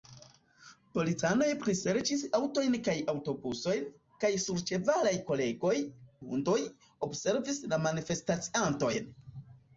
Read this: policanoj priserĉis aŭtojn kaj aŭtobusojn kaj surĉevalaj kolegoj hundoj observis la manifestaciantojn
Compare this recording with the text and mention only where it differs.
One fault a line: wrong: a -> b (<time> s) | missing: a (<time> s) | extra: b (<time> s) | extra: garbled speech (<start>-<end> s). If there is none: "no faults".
no faults